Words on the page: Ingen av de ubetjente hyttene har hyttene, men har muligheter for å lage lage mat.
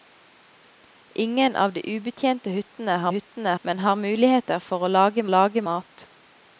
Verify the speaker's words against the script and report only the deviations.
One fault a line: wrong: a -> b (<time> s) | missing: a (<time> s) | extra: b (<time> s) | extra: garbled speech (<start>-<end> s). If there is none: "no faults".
no faults